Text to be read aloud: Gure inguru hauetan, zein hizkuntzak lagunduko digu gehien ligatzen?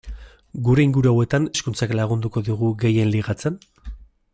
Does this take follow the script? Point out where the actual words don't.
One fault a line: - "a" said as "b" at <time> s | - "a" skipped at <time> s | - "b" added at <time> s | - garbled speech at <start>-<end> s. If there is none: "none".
- "zein" skipped at 1.4 s